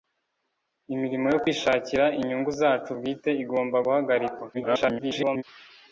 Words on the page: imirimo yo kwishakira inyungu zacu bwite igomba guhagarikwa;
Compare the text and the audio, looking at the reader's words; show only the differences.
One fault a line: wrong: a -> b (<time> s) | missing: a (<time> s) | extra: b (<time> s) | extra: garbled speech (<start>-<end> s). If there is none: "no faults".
extra: garbled speech (4.5-5.4 s)